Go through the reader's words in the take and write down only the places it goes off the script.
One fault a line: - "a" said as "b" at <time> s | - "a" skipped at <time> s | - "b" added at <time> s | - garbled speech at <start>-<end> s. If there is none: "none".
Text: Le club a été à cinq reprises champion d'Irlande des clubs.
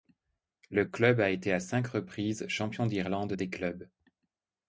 none